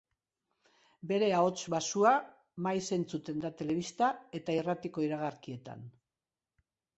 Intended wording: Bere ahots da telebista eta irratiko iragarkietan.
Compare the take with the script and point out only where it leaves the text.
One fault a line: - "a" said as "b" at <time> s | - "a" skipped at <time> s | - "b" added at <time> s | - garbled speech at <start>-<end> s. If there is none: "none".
- "baxua maiz entzuten" added at 1.7 s